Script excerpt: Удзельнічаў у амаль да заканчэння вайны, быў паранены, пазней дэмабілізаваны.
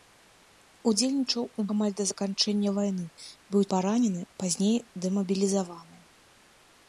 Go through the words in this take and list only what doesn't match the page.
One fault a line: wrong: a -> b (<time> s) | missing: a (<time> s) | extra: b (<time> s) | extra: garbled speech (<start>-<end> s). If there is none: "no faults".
no faults